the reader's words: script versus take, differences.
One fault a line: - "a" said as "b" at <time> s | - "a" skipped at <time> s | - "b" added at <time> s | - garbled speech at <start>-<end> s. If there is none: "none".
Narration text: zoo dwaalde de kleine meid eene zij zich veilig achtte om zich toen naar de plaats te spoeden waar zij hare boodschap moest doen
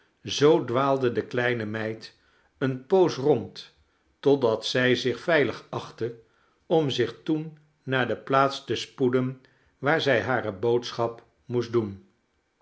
- "poos rond totdat" added at 2.8 s